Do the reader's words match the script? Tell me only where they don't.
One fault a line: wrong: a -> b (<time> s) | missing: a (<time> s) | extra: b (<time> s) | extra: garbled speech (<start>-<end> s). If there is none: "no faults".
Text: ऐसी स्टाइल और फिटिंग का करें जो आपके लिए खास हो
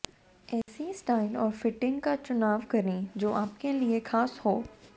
extra: चुनाव (2.1 s)